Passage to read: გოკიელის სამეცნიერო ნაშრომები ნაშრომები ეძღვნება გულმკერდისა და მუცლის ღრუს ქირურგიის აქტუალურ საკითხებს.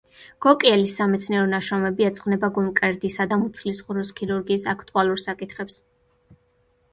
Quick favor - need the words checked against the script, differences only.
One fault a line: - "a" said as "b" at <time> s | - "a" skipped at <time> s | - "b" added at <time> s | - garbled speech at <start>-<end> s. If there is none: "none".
- "ნაშრომები" skipped at 2.1 s